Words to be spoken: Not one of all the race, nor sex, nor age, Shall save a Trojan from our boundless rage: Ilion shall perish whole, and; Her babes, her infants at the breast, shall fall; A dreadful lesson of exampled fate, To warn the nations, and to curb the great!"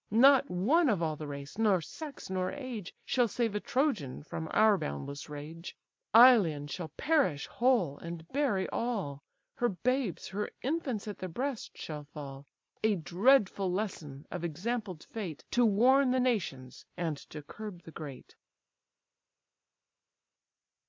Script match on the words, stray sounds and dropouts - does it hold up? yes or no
no